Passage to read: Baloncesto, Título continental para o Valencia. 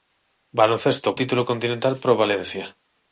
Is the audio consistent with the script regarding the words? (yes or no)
yes